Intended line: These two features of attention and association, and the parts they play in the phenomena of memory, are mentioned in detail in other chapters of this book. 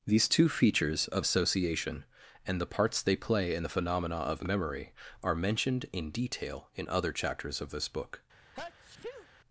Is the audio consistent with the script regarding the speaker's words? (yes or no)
no